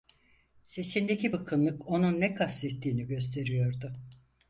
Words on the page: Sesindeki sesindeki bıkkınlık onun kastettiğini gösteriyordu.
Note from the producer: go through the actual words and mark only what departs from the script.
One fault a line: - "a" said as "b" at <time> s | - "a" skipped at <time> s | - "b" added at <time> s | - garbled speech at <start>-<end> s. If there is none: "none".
- "sesindeki" skipped at 1.3 s
- "ne" added at 2.2 s